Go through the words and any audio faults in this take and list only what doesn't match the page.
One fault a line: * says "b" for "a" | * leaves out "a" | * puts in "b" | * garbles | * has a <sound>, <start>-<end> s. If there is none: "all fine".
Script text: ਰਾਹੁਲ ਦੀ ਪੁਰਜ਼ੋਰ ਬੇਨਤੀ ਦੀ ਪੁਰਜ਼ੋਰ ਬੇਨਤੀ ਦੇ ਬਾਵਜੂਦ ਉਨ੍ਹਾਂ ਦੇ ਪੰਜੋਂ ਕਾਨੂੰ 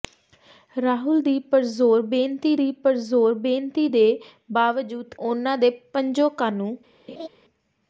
* has a laugh, 7.1-7.3 s